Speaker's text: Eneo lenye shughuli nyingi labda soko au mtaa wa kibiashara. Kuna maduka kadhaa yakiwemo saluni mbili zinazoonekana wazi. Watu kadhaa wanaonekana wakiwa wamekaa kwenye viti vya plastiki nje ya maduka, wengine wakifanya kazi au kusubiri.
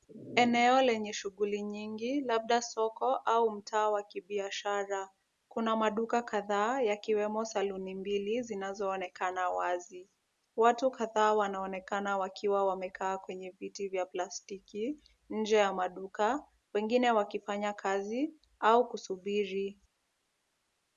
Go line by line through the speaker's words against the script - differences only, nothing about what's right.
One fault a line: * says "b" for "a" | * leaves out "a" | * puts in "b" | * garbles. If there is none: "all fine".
all fine